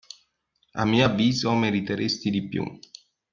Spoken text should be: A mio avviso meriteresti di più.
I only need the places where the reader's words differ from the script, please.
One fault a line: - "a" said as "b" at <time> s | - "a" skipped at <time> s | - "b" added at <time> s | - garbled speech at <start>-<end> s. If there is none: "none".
none